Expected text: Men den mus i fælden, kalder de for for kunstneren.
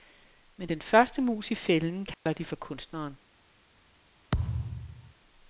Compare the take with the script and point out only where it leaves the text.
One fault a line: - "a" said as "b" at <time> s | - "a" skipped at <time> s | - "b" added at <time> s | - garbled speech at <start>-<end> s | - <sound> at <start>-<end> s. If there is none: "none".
- "første" added at 0.8 s
- dropout at 2.1-2.3 s
- "for" skipped at 2.5 s
- thud at 4.3-5.1 s